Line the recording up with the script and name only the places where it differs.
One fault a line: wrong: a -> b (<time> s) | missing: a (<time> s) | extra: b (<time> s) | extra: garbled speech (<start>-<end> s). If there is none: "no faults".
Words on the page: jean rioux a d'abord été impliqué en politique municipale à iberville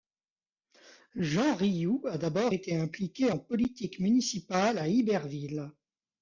no faults